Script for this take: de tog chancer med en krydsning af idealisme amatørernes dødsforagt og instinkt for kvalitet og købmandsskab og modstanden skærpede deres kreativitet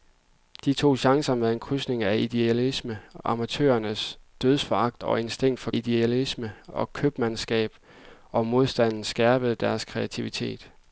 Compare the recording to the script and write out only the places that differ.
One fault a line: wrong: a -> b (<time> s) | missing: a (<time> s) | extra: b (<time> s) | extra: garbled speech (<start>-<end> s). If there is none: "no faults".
wrong: kvalitet -> idealisme (5.7 s)